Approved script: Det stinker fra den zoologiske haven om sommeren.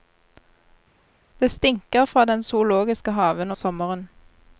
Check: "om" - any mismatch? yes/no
yes